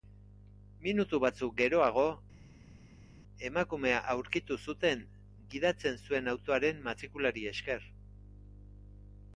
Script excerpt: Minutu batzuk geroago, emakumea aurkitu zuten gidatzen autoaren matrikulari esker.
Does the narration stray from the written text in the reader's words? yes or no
yes